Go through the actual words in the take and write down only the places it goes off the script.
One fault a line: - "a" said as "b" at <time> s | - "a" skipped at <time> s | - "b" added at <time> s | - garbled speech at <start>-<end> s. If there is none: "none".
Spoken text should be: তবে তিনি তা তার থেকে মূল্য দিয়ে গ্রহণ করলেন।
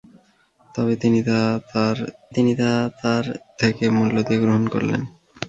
- "তিনি তা তার" added at 2.3 s